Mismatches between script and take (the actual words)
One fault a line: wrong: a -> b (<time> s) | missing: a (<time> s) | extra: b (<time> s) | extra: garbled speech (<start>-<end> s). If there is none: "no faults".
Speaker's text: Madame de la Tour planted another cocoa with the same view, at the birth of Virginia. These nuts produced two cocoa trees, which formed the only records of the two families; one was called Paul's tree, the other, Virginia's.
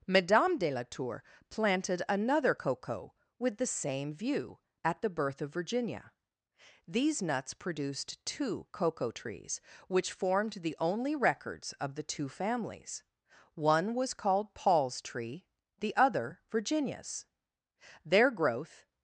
extra: Their growth (18.1 s)